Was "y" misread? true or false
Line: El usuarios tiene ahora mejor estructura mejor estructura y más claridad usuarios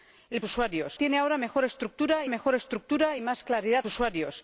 false